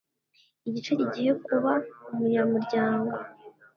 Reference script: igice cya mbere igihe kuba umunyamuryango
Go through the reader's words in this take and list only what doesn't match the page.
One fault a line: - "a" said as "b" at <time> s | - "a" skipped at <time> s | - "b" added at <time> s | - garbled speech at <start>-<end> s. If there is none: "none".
- "cya mbere" skipped at 0.9 s